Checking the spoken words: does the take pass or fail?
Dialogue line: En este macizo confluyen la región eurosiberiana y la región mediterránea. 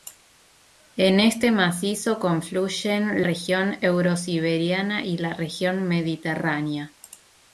fail